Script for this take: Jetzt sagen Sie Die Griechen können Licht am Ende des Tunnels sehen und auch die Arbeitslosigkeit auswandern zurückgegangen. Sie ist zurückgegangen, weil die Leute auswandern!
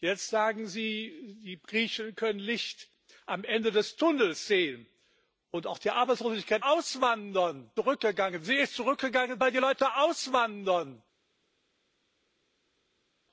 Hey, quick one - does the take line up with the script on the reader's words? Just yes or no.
yes